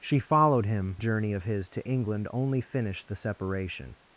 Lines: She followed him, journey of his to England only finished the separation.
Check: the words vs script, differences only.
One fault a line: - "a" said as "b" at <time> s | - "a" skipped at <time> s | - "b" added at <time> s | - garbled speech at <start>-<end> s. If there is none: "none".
none